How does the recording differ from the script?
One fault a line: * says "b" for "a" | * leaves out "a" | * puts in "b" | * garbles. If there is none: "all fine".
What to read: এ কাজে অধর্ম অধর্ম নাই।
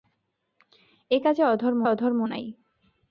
all fine